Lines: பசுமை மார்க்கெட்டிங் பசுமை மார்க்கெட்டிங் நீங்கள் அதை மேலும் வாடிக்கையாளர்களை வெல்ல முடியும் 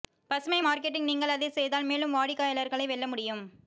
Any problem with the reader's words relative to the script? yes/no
yes